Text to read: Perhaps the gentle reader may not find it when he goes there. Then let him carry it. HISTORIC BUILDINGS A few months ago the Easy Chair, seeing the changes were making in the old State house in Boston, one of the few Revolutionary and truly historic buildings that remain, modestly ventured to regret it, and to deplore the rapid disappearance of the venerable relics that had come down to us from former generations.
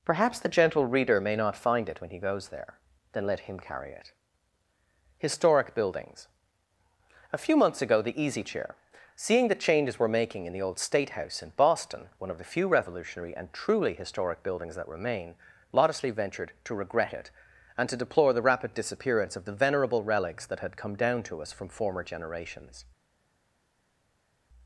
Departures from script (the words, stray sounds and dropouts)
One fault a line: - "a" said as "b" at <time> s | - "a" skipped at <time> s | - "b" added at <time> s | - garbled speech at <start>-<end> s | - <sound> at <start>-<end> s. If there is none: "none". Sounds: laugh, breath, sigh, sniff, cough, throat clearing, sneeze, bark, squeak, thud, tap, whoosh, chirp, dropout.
none